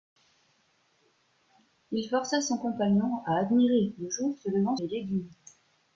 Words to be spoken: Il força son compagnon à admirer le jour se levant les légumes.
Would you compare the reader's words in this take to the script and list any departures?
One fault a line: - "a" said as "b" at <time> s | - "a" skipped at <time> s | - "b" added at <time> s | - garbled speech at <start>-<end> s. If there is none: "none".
none